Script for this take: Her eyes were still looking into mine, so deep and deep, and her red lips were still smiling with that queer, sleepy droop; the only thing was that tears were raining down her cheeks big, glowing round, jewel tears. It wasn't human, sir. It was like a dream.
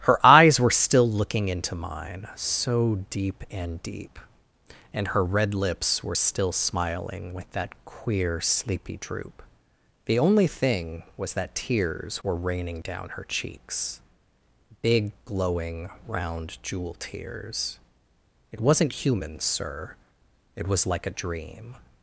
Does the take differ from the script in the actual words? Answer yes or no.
no